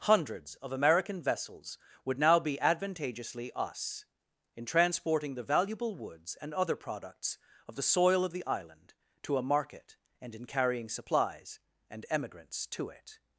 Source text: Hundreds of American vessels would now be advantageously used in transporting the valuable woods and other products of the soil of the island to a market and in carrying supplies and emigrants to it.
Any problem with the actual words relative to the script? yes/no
yes